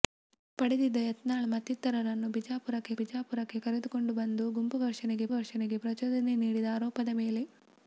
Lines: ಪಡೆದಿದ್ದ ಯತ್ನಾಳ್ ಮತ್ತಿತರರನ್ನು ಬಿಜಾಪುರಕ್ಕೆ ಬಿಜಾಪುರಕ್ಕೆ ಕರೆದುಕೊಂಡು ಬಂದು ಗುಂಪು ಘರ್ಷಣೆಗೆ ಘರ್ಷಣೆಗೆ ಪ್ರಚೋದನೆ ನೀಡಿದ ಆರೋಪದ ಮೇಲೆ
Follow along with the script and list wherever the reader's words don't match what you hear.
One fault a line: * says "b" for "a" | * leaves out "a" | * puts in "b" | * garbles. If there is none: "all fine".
all fine